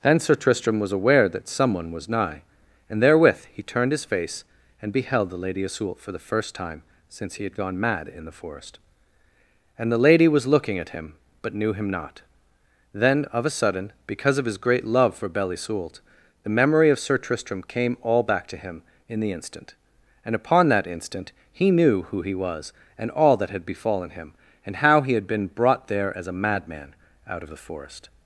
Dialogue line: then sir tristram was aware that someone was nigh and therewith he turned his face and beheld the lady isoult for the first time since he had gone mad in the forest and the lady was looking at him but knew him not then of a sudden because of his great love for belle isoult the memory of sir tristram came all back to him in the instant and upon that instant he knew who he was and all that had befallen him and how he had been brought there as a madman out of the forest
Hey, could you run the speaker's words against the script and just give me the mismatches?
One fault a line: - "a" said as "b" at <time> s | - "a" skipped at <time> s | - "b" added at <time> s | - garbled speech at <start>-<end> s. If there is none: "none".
none